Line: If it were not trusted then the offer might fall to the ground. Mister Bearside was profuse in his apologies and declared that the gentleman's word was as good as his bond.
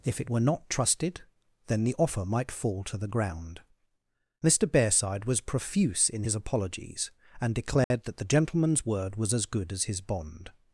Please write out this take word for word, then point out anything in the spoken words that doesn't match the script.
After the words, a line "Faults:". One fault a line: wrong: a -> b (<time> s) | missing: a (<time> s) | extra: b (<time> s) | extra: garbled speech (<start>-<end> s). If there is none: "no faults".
If it were not trusted then the offer might fall to the ground. Mister Bearside was profuse in his apologies and declared that the gentleman's word was as good as his bond.
Faults:
no faults